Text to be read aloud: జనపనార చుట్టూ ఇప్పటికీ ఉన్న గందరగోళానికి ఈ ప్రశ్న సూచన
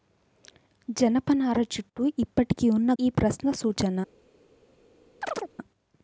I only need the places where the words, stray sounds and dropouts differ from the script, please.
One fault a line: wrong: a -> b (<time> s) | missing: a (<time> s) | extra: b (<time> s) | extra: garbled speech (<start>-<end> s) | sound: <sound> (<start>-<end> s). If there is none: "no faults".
missing: గందరగోళానికి (2.9 s)
sound: chirp (5.2-5.5 s)